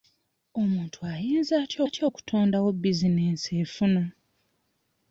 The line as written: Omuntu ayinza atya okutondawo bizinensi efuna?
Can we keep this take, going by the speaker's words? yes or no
no